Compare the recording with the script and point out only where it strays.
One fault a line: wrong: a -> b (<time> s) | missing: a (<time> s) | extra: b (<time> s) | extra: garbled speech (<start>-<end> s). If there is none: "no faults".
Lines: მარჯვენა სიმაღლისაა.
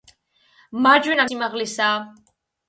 no faults